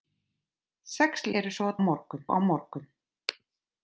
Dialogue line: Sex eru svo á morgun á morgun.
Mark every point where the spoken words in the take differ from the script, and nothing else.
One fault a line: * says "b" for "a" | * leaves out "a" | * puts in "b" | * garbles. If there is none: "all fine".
all fine